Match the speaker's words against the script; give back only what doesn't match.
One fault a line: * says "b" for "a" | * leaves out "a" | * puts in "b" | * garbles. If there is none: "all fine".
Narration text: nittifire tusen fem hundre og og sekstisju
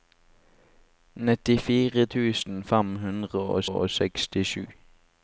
all fine